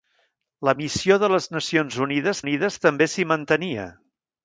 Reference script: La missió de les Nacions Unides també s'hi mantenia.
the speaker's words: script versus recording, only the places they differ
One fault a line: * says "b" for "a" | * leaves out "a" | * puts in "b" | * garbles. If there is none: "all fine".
* puts in "Unides"